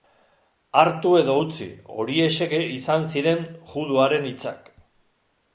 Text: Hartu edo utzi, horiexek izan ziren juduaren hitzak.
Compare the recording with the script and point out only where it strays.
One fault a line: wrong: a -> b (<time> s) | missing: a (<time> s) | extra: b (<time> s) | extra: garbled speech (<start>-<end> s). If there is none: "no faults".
no faults